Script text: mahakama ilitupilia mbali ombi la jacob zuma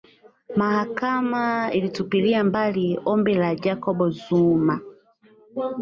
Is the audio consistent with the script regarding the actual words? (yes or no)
yes